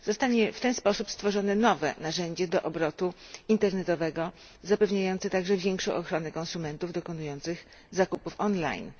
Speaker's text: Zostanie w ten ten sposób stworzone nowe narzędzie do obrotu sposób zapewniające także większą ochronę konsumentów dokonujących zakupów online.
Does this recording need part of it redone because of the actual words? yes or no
yes